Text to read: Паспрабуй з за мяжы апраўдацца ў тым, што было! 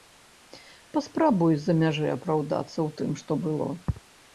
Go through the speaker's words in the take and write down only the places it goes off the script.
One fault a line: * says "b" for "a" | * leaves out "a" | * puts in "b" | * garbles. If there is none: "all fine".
all fine